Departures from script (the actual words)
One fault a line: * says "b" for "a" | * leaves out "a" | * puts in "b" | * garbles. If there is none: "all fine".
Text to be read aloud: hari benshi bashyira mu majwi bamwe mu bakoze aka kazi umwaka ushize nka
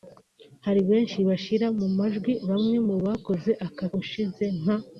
* leaves out "kazi umwaka"